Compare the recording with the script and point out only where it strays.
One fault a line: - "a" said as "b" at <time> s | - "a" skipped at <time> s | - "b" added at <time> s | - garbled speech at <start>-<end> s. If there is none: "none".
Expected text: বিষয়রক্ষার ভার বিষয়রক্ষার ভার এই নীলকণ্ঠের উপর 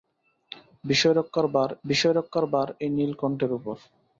none